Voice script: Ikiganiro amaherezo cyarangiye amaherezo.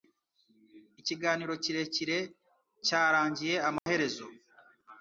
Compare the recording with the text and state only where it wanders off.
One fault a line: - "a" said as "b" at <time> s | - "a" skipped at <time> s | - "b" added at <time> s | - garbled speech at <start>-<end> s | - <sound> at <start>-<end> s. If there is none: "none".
- "amaherezo" said as "kirekire" at 1.6 s
- dropout at 3.8-3.9 s